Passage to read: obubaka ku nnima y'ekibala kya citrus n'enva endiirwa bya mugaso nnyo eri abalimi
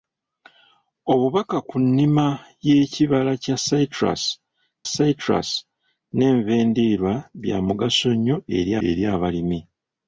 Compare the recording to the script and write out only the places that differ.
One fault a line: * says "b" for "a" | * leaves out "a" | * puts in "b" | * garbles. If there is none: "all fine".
* puts in "citrus"
* puts in "eri"